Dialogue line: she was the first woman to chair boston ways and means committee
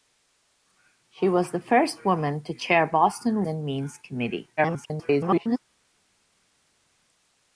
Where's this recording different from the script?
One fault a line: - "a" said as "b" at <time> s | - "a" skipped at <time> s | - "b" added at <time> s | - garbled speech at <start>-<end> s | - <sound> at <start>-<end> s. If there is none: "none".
- "ways" skipped at 3.4 s
- garbled speech at 4.6-5.6 s